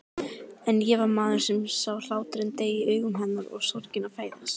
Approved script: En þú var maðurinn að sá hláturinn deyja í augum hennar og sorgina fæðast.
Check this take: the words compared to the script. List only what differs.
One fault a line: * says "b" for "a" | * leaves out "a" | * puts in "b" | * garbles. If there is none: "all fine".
* says "ég" for "þú"
* says "sem" for "að"